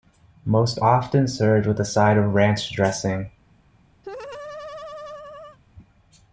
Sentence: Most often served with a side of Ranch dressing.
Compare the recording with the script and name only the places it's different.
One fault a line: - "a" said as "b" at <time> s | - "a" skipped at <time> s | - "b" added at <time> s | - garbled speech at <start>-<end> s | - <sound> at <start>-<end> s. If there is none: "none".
- laugh at 4.0-5.6 s